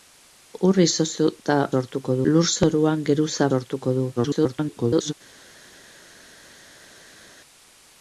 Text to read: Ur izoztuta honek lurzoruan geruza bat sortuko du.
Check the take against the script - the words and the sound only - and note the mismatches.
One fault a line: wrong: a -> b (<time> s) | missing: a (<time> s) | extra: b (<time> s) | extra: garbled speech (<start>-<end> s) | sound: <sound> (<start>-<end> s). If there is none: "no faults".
wrong: honek -> sortuko (1.7 s)
missing: bat (3.5 s)
extra: garbled speech (4.2-5.1 s)